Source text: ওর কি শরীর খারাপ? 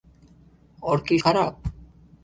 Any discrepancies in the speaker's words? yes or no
yes